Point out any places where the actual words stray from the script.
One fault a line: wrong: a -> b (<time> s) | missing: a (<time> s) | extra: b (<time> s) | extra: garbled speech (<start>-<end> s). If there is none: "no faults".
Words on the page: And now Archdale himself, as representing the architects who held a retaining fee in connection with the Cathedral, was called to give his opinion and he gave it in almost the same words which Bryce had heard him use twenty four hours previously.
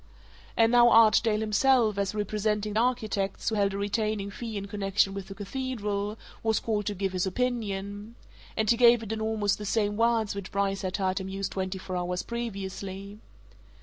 missing: the (2.7 s)